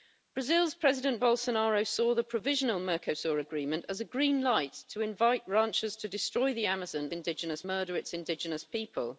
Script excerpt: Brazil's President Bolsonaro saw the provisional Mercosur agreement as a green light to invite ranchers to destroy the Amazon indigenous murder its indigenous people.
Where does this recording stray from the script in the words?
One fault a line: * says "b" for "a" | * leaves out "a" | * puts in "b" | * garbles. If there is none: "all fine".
all fine